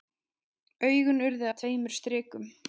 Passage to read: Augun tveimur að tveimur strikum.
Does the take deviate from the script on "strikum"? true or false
false